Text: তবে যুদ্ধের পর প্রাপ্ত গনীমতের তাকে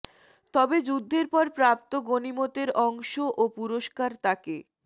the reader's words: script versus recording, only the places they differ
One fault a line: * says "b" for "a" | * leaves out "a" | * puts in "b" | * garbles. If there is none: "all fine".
* puts in "অংশ ও পুরস্কার"